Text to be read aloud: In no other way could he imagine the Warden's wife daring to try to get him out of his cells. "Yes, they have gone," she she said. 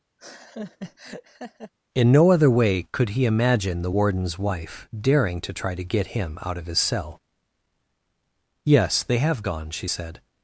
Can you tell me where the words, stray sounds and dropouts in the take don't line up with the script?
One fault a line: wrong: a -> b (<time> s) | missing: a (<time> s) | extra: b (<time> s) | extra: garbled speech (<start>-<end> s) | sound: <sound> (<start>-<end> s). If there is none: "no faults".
sound: laugh (0.2-1.7 s)
wrong: cells -> cell (6.8 s)
missing: she (9.9 s)